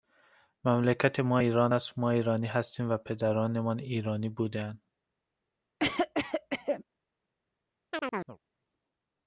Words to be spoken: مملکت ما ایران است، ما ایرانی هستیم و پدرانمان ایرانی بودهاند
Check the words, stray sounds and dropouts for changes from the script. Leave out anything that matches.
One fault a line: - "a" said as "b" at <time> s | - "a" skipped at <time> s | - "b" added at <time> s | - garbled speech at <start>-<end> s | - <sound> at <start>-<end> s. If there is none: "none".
- cough at 5.8-6.8 s
- chirp at 7.9-8.4 s